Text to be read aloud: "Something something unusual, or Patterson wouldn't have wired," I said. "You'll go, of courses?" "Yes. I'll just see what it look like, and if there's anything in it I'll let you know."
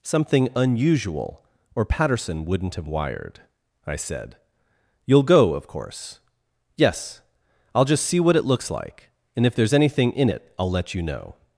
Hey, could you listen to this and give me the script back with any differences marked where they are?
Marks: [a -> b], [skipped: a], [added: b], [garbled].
"Something [skipped: something] unusual, or Patterson wouldn't have wired," I said. "You'll go, of [courses?" -> course] "Yes. I'll just see what it [look -> looks] like, and if there's anything in it I'll let you know."